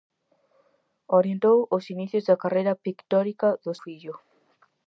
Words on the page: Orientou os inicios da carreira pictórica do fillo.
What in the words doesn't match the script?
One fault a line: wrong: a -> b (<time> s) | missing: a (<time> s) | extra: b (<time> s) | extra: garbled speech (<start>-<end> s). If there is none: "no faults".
no faults